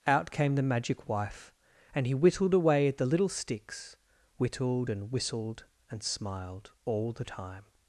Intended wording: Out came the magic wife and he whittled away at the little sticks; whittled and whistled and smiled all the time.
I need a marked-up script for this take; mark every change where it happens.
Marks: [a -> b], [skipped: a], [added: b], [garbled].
Out came the magic wife and he whittled away at the little sticks; whittled and whistled and smiled all the time.